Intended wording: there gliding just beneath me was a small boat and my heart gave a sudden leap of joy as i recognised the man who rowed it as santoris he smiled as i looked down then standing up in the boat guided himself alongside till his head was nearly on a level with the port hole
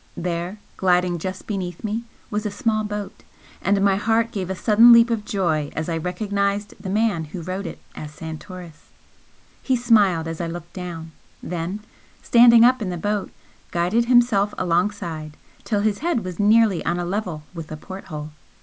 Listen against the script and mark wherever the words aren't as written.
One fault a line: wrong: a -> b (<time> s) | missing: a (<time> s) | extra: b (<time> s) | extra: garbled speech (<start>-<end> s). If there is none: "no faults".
no faults